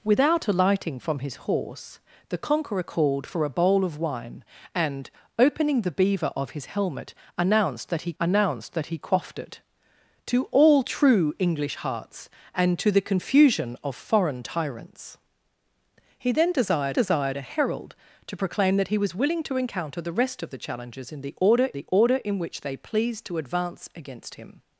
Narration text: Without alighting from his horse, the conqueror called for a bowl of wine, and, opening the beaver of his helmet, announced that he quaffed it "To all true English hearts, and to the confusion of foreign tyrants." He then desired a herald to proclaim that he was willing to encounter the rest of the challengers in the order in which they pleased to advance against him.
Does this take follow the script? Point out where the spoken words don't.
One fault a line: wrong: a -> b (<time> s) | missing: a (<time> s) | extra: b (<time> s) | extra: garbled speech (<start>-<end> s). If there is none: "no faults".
extra: announced that he (8.2 s)
extra: desired (16.9 s)
extra: the order (21.7 s)